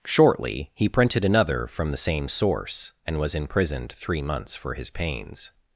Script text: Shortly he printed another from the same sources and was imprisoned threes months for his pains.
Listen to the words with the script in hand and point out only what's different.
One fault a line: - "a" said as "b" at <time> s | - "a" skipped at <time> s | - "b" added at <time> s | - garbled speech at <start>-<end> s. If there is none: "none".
- "sources" said as "source" at 2.3 s
- "threes" said as "three" at 3.9 s